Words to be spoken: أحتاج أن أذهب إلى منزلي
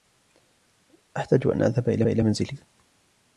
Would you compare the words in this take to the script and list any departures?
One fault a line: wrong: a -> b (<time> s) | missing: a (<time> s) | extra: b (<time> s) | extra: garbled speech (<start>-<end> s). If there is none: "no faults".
extra: إلى (2.1 s)